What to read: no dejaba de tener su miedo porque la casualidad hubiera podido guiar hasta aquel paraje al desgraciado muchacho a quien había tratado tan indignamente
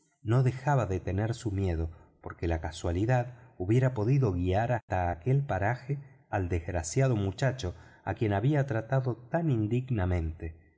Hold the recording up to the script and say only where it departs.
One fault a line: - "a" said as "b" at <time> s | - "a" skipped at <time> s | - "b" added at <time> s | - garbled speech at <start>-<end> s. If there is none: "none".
none